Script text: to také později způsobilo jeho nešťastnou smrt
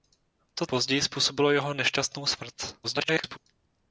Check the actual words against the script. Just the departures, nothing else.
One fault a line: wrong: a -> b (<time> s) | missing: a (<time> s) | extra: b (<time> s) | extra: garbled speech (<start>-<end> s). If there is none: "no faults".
missing: také (0.7 s)
extra: garbled speech (2.8-3.4 s)